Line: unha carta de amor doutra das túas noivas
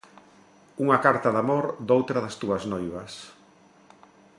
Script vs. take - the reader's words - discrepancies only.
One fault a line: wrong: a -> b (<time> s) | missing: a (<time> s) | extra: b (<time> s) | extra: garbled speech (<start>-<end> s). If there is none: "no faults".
no faults